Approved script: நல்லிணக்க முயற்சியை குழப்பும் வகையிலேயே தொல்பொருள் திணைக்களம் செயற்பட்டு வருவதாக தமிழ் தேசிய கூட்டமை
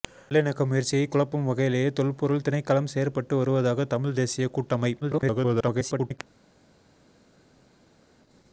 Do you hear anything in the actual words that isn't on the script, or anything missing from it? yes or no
yes